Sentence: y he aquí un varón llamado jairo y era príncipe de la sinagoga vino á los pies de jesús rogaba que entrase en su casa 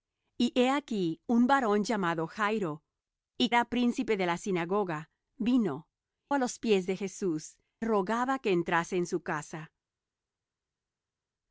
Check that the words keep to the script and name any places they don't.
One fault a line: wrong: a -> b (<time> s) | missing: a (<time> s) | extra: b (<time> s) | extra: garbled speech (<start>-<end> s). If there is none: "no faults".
no faults